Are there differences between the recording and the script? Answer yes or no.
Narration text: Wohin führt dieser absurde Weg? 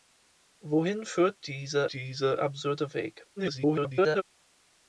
yes